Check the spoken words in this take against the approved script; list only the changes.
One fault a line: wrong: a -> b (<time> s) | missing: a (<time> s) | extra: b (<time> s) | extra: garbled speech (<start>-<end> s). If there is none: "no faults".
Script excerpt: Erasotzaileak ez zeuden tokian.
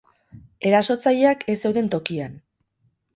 no faults